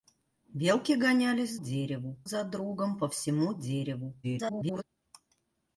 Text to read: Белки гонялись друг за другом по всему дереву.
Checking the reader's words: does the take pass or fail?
fail